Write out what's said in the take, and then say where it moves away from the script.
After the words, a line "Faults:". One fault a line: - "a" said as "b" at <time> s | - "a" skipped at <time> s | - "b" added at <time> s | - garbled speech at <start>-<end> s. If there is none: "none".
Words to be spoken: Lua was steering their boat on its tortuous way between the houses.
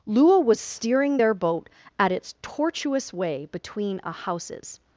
Lua was steering their boat at its tortuous way between a houses.
Faults:
- "on" said as "at" at 2.0 s
- "the" said as "a" at 4.0 s